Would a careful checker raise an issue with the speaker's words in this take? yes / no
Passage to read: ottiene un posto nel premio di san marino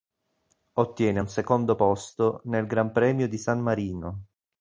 yes